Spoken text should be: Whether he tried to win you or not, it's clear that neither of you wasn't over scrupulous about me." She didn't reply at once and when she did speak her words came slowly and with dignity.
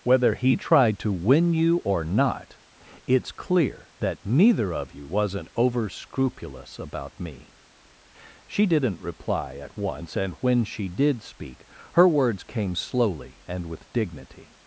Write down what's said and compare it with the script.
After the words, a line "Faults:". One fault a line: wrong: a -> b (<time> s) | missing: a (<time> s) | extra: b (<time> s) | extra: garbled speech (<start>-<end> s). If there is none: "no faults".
Whether he tried to win you or not, it's clear that neither of you wasn't over scrupulous about me." She didn't reply at once and when she did speak her words came slowly and with dignity.
Faults:
no faults